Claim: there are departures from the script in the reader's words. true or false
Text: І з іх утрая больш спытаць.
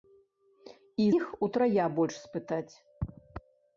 true